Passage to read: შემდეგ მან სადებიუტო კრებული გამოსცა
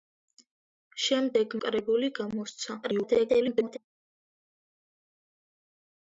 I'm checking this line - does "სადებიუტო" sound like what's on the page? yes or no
no